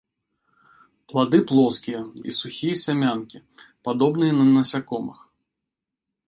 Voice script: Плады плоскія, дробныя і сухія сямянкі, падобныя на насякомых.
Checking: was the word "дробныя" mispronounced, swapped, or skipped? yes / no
yes